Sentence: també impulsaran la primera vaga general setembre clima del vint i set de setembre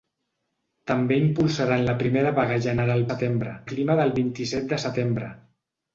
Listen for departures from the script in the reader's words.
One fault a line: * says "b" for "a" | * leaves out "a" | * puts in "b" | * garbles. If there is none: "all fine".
all fine